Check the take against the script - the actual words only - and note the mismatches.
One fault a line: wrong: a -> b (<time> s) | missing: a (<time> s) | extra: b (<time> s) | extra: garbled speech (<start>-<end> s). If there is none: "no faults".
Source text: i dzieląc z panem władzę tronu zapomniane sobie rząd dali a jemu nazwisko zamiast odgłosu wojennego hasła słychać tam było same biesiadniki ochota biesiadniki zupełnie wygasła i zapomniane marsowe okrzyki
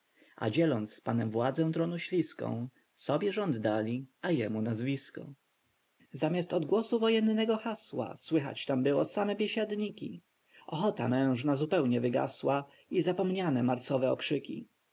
wrong: i -> a (0.3 s)
wrong: zapomniane -> śliską (2.0 s)
wrong: biesiadniki -> mężna (11.1 s)